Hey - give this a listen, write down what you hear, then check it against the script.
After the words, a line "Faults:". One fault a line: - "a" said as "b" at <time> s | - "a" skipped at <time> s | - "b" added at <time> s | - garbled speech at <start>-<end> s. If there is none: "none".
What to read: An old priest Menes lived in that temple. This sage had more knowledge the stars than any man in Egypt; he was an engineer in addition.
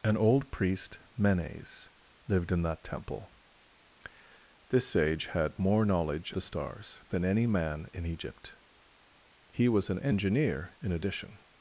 An old priest Menes lived in that temple. This sage had more knowledge the stars than any man in Egypt; he was an engineer in addition.
Faults:
none